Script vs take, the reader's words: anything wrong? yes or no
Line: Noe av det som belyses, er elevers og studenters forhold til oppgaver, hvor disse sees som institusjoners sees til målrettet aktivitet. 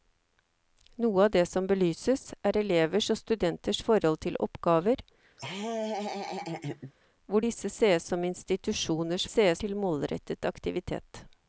no